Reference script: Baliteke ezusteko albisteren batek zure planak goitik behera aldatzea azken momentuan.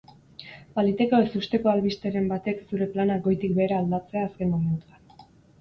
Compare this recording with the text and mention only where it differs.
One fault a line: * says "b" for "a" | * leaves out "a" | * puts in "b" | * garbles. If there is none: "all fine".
all fine